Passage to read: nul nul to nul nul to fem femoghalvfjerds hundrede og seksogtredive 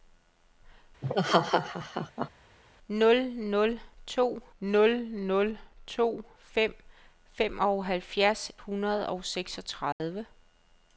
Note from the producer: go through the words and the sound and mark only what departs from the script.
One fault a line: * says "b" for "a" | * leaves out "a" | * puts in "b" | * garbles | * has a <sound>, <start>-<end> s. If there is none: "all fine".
* has a laugh, 1.0-2.3 s
* has a dropout, 9.9-10.0 s